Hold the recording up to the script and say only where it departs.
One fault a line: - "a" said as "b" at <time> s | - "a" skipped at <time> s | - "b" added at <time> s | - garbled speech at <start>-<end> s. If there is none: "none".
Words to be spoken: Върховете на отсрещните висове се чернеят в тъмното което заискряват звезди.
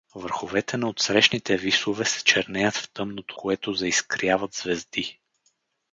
none